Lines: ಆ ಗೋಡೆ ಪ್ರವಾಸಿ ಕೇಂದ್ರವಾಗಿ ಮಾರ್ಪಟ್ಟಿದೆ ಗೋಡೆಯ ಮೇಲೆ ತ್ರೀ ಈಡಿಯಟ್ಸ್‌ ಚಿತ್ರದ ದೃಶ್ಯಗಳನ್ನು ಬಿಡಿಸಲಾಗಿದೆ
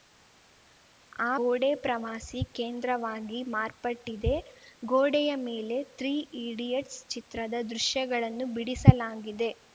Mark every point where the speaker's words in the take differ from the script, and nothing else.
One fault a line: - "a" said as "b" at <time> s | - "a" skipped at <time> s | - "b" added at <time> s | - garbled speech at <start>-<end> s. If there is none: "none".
none